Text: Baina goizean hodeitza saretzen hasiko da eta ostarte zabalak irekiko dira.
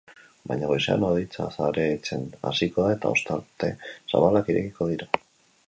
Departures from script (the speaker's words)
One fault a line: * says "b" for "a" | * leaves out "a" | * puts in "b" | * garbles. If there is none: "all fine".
all fine